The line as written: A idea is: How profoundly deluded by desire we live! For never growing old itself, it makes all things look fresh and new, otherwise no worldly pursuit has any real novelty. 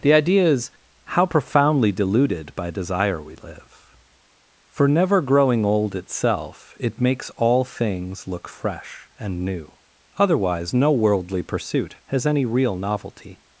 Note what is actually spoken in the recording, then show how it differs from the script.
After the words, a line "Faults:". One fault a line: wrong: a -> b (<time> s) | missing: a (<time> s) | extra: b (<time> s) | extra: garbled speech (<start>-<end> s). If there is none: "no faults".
The idea is: How profoundly deluded by desire we live! For never growing old itself, it makes all things look fresh and new, otherwise no worldly pursuit has any real novelty.
Faults:
wrong: A -> The (0.0 s)